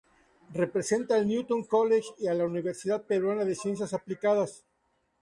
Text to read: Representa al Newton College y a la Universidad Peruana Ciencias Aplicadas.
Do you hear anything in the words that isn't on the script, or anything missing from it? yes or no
yes